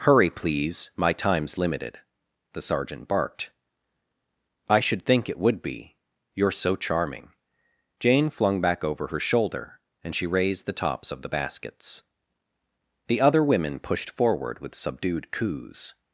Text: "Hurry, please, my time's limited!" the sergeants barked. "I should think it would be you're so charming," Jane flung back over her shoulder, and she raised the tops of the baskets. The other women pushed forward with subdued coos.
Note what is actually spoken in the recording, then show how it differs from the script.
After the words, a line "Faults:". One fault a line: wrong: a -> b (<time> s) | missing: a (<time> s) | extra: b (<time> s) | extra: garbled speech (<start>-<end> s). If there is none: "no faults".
"Hurry, please, my time's limited!" the sergeant barked. "I should think it would be you're so charming," Jane flung back over her shoulder, and she raised the tops of the baskets. The other women pushed forward with subdued coos.
Faults:
wrong: sergeants -> sergeant (2.6 s)